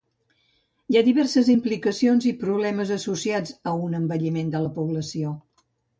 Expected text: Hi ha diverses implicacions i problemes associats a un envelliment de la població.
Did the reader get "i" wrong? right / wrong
right